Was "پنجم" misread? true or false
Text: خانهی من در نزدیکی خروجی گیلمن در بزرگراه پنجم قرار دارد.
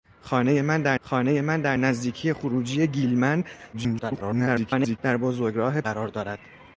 true